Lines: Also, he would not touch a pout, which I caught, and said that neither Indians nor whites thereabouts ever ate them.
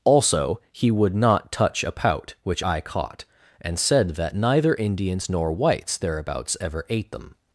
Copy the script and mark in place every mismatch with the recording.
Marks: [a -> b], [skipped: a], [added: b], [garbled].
Also, he would not touch a pout, which I caught, and said that neither Indians nor whites thereabouts ever ate them.